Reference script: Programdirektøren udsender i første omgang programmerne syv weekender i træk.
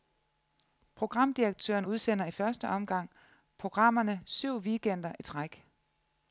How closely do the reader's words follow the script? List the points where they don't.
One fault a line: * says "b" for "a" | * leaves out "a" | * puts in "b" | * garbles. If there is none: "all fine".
all fine